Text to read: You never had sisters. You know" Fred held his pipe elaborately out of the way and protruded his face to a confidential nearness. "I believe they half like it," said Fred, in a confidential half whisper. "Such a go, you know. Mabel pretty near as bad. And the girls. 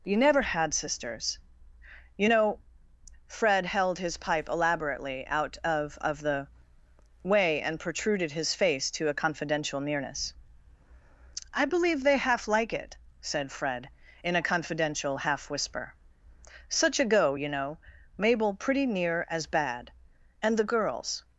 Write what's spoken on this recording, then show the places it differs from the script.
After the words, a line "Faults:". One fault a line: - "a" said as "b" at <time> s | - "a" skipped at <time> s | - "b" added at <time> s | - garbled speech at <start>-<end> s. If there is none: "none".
You never had sisters. You know" Fred held his pipe elaborately out of of the way and protruded his face to a confidential nearness. "I believe they half like it," said Fred, in a confidential half whisper. "Such a go, you know. Mabel pretty near as bad. And the girls.
Faults:
- "of" added at 6.0 s